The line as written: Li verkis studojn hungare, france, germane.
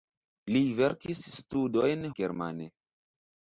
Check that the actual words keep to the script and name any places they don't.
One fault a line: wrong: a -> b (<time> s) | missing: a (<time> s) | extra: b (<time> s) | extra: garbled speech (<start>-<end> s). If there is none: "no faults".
missing: hungare france (2.1 s)